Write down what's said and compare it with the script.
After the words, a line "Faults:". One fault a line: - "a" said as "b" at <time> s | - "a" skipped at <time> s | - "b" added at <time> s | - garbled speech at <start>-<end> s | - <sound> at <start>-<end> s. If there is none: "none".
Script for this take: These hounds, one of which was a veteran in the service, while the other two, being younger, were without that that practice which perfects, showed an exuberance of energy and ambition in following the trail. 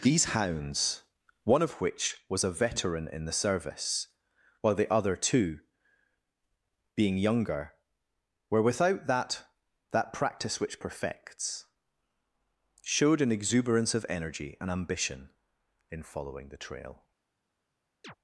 These hounds, one of which was a veteran in the service, while the other two, being younger, were without that that practice which perfects, showed an exuberance of energy and ambition in following the trail.
Faults:
- chirp at 18.0-18.2 s